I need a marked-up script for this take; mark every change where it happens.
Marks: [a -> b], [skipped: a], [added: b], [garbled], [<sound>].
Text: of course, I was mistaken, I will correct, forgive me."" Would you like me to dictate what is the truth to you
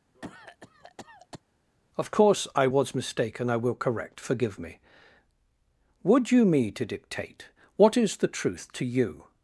[cough] of course, I was mistaken, I will correct, forgive me."" Would you [skipped: like] me to dictate what is the truth to you